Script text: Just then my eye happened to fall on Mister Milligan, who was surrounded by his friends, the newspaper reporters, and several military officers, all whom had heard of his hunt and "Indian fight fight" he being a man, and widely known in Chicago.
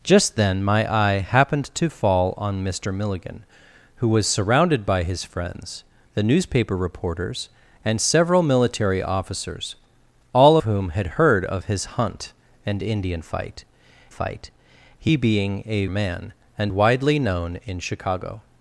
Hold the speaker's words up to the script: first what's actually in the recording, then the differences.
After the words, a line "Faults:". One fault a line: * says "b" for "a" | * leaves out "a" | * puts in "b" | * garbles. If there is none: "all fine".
Just then my eye happened to fall on Mister Milligan, who was surrounded by his friends, the newspaper reporters, and several military officers, all whom had heard of his hunt and "Indian fight fight" he being a man, and widely known in Chicago.
Faults:
all fine